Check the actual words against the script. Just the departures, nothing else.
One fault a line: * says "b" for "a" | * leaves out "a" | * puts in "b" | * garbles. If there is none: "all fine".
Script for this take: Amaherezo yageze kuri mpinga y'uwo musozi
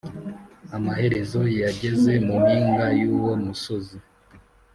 * says "mu" for "kuri"